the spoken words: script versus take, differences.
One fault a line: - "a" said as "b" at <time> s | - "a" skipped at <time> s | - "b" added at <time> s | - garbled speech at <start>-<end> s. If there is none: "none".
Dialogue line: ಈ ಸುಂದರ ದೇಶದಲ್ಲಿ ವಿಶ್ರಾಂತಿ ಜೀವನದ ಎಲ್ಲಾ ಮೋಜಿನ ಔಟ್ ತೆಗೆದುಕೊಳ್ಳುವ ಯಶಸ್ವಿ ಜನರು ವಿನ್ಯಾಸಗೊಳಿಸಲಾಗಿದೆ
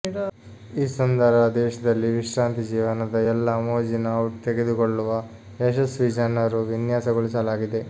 none